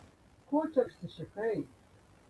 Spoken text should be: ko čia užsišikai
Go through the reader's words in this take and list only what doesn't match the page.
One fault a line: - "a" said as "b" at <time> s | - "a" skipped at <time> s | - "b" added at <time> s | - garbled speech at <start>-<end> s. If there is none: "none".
none